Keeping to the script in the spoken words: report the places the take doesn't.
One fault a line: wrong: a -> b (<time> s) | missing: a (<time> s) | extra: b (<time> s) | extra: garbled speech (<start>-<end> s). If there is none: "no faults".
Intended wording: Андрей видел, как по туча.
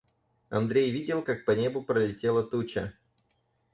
extra: небу пролетела (1.5 s)